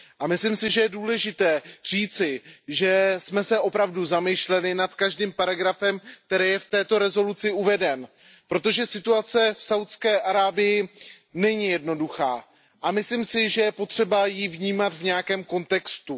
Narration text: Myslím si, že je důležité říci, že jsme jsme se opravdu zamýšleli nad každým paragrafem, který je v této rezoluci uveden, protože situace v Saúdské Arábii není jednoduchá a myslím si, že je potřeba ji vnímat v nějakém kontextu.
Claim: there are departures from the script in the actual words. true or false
true